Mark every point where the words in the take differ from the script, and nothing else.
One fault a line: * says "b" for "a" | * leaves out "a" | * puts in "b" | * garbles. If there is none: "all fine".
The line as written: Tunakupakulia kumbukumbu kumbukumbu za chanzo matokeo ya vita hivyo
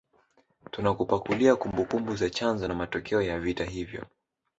* leaves out "kumbukumbu"
* puts in "na"